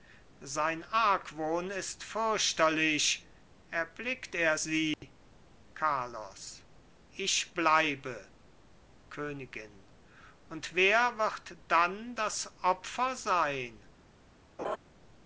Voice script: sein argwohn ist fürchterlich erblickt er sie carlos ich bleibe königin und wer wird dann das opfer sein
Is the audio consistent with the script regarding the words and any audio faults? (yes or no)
no